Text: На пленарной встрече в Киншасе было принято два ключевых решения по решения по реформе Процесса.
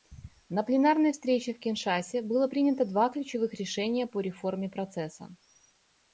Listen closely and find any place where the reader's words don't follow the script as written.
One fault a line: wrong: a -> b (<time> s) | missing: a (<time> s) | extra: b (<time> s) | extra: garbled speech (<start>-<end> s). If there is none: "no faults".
missing: решения по (4.2 s)